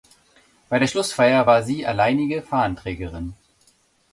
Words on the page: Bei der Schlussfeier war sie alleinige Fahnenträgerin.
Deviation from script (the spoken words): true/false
false